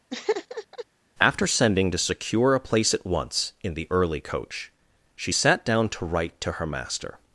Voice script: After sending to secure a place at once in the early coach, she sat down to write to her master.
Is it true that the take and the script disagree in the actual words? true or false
false